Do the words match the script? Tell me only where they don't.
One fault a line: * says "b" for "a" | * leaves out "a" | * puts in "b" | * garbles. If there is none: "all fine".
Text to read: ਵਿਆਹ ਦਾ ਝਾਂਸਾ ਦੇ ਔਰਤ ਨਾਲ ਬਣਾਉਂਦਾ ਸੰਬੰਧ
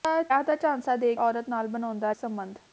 all fine